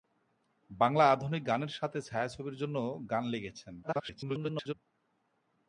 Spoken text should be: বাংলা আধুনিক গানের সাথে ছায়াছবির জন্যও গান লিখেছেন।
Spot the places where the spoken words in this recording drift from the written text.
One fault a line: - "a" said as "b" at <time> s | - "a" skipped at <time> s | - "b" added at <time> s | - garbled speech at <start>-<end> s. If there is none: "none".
- garbled speech at 3.8-4.7 s